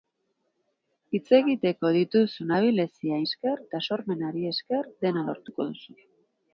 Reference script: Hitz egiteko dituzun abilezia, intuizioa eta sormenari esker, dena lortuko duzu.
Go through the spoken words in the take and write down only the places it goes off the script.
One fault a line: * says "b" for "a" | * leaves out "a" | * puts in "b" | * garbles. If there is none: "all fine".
* says "esker" for "intuizioa"